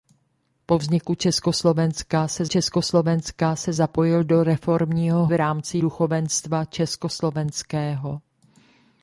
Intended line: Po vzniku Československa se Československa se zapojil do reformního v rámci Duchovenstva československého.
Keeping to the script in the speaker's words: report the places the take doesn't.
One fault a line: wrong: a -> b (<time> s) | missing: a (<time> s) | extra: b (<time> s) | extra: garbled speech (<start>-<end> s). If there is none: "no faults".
no faults